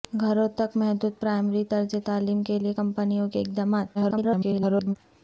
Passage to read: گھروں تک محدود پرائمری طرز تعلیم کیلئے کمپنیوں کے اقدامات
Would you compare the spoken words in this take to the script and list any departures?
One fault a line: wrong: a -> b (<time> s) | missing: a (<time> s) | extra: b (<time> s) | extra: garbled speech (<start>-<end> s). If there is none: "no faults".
extra: garbled speech (3.9-5.0 s)